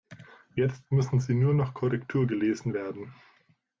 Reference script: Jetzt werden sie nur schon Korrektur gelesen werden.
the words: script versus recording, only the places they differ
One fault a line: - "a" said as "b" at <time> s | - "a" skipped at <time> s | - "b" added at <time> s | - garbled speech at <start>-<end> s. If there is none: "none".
- "werden" said as "müssen" at 0.9 s
- "schon" said as "noch" at 1.5 s